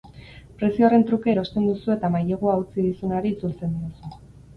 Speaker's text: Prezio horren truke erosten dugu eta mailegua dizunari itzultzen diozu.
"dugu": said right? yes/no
no